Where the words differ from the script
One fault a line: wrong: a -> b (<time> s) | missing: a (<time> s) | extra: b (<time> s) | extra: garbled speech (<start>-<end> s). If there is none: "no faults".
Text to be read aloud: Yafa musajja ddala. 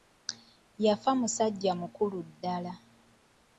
extra: mukulu (1.8 s)